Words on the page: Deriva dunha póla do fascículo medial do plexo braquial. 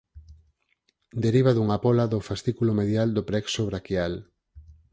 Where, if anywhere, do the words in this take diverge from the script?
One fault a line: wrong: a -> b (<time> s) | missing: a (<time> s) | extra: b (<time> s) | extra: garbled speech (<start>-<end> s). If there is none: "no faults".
no faults